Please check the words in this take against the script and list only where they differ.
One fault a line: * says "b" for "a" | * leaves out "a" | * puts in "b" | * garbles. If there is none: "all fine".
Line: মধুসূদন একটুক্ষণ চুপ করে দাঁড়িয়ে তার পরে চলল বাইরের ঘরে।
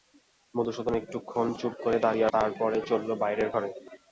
all fine